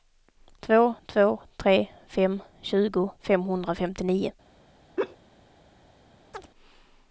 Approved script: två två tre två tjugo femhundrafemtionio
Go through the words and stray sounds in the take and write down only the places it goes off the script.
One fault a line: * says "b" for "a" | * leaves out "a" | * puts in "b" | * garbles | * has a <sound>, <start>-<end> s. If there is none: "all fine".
* says "fem" for "två"
* has a laugh, 5.0-5.2 s
* has a chirp, 6.3-6.5 s